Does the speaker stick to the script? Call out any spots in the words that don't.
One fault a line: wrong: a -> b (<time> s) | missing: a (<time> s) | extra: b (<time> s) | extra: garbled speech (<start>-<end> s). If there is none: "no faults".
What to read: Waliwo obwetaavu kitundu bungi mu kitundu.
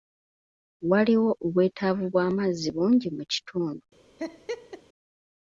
wrong: kitundu -> bw'amazzi (2.1 s)